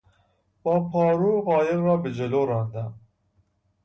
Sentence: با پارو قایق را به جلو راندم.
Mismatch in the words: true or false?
false